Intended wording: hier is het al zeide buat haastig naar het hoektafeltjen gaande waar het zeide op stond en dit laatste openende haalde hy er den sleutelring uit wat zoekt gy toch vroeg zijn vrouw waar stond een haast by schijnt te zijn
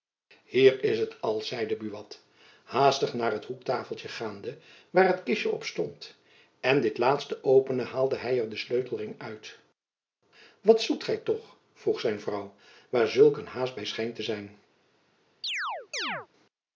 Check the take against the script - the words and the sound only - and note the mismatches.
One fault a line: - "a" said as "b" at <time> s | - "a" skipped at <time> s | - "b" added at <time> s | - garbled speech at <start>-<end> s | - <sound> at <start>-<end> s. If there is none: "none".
- "zeide" said as "kistjen" at 5.2 s
- "stond" said as "zulk" at 13.1 s
- chirp at 15.4-16.3 s